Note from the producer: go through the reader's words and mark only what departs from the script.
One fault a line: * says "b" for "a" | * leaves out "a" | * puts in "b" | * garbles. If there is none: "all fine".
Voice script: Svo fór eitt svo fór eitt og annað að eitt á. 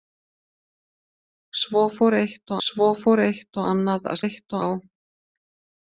all fine